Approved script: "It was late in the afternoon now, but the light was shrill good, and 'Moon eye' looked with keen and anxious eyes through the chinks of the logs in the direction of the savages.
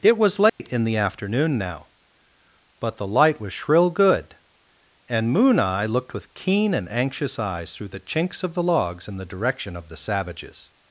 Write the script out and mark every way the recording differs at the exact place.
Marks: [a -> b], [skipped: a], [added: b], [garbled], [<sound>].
"It was late [dropout] in the afternoon now, but the light was shrill good, and 'Moon eye' looked with keen and anxious eyes through the chinks of the logs in the direction of the savages.